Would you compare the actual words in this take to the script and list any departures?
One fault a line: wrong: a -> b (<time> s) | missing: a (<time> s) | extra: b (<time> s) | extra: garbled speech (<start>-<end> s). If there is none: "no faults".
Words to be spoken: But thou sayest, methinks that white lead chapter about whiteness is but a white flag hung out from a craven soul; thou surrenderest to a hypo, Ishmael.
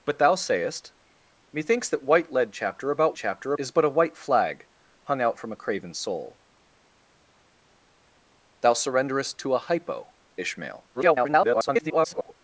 wrong: whiteness -> chapter (3.1 s)
extra: garbled speech (10.9-12.3 s)